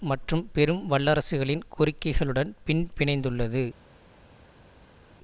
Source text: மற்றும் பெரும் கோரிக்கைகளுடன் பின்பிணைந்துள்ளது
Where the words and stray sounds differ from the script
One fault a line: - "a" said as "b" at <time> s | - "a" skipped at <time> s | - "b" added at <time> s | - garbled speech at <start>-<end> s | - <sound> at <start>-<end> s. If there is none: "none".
- "வல்லரசுகளின்" added at 0.9 s